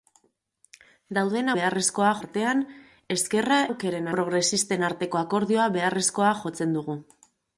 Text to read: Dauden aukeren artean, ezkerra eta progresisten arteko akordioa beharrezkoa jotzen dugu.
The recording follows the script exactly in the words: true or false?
false